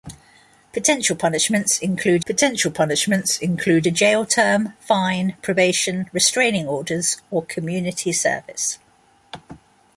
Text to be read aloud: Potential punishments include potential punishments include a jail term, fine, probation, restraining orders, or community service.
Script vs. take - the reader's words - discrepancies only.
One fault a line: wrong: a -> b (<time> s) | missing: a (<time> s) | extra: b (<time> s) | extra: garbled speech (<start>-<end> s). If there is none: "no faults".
no faults